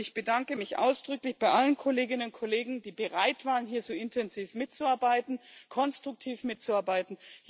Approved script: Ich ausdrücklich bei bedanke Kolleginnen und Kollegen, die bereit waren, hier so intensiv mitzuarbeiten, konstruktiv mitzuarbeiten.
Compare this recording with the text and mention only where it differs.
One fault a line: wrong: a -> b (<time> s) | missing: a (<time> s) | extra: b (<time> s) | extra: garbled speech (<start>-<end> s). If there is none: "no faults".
extra: bedanke mich (0.1 s)
wrong: bedanke -> allen (1.5 s)